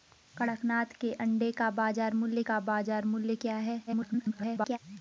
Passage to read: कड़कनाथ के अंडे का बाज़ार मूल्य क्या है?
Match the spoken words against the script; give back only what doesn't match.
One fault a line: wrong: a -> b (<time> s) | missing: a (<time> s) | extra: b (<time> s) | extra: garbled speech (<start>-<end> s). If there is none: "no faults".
extra: का बाज़ार मूल्य (2.4 s)
extra: garbled speech (3.9-4.8 s)